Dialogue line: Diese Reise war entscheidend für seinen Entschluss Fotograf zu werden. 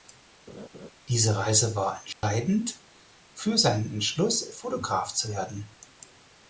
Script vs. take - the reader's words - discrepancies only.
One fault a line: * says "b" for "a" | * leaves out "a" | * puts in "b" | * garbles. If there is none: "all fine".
all fine